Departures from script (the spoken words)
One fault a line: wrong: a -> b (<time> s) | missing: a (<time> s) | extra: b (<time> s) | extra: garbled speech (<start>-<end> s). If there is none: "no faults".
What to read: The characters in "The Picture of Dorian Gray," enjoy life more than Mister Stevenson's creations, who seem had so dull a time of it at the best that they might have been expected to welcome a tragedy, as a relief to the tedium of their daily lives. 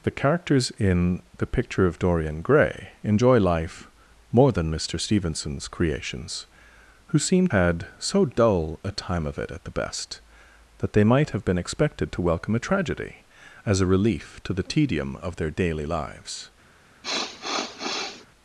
no faults